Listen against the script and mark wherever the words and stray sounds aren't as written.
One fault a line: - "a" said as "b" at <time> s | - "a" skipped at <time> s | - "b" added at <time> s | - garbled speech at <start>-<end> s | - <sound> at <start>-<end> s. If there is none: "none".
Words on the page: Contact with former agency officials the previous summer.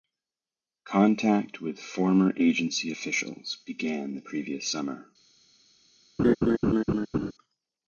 - "began" added at 3.7 s
- laugh at 6.2-7.3 s